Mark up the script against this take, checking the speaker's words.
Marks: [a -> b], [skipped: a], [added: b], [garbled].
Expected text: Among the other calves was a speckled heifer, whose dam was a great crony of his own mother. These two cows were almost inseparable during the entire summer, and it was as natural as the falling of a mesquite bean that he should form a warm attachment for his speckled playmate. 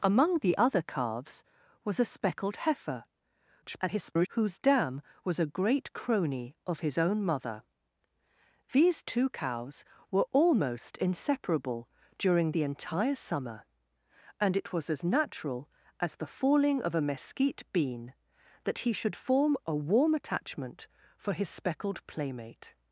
Among the other calves was a speckled heifer, [garbled] whose dam was a great crony of his own mother. These two cows were almost inseparable during the entire summer, and it was as natural as the falling of a mesquite bean that he should form a warm attachment for his speckled playmate.